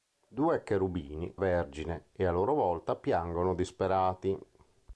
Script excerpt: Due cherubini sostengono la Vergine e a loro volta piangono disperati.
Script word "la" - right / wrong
wrong